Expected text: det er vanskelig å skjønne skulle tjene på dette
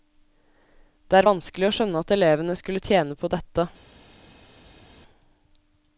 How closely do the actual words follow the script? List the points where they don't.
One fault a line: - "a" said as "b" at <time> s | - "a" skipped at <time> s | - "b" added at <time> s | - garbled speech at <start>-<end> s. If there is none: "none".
- "at elevene" added at 2.0 s